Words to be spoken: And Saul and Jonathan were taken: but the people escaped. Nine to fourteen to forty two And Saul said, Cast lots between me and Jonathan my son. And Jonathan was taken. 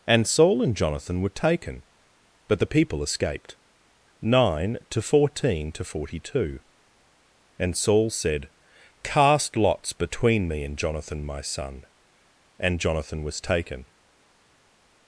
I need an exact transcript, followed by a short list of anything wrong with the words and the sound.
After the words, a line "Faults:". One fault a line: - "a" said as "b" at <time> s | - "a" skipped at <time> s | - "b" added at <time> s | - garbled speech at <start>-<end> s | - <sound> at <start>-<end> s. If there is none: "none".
And Saul and Jonathan were taken: but the people escaped. Nine to fourteen to forty two And Saul said, Cast lots between me and Jonathan my son. And Jonathan was taken.
Faults:
none